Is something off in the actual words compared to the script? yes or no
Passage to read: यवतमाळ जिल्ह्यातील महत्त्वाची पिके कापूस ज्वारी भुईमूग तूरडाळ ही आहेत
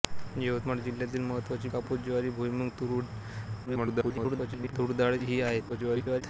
yes